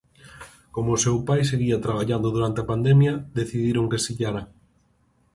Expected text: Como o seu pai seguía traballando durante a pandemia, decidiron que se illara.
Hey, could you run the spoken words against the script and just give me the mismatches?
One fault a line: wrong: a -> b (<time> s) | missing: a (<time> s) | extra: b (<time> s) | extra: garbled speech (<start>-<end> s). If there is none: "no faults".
no faults